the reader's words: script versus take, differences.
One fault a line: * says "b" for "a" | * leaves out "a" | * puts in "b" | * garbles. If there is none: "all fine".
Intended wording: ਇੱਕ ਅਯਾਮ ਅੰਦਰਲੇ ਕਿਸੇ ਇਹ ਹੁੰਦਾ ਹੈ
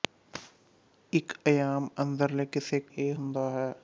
all fine